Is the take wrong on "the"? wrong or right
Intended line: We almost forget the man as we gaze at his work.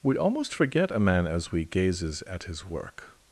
wrong